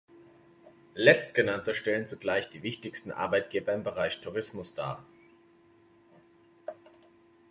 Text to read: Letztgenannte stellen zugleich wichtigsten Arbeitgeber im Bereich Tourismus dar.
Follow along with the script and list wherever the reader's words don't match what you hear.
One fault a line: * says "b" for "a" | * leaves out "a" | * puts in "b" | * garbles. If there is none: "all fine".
* puts in "die"